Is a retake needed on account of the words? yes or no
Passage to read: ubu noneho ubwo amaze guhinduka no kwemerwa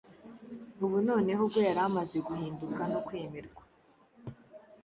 yes